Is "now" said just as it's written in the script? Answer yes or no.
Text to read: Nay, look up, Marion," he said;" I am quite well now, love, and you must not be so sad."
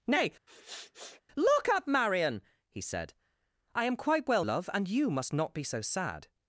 no